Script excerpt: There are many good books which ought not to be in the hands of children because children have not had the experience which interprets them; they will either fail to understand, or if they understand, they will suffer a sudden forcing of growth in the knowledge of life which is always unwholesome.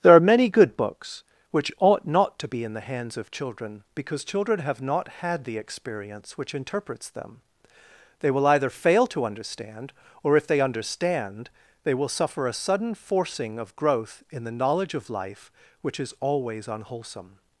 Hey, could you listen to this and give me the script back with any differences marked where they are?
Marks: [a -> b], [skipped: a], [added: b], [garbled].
There are many good books which ought not to be in the hands of children because children have not had the experience which interprets them; they will either fail to understand, or if they understand, they will suffer a sudden forcing of growth in the knowledge of life which is always unwholesome.